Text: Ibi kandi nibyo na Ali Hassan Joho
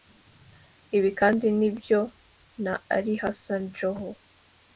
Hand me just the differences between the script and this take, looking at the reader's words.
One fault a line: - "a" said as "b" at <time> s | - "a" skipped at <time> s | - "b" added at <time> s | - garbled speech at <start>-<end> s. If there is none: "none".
none